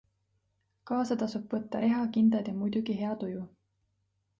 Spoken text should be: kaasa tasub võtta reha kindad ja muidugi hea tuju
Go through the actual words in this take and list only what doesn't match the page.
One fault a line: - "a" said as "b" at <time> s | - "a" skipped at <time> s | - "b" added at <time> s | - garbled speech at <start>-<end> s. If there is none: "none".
none